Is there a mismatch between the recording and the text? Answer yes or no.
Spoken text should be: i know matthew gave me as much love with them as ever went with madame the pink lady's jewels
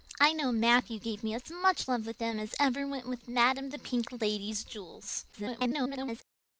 yes